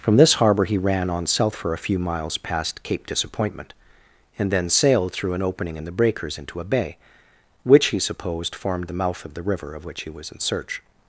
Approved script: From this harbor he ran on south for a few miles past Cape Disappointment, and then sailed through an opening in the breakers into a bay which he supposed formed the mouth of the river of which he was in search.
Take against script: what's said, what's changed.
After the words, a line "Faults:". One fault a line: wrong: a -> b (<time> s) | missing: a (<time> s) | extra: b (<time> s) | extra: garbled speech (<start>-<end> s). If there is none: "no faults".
From this harbor he ran on south for a few miles past Cape Disappointment, and then sailed through an opening in the breakers into a bay which he supposed formed the mouth of the river of which he was in search.
Faults:
no faults